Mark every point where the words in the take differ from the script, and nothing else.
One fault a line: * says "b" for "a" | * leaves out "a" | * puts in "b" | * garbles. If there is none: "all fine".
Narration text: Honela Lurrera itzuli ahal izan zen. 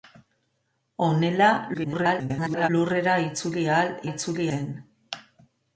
* garbles
* says "itzuli" for "izan"